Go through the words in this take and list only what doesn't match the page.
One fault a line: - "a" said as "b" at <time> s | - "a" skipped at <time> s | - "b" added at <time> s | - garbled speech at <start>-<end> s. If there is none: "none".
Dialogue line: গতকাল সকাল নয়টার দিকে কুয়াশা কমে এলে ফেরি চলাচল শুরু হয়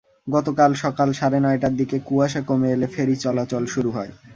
- "সাড়ে" added at 1.2 s